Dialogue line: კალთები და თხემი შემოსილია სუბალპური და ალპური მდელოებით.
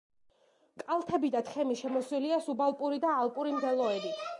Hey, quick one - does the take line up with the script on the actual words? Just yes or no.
yes